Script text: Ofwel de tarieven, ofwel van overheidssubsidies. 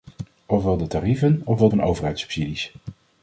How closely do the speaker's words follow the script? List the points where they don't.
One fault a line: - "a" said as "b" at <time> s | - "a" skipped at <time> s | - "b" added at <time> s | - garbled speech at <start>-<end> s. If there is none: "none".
none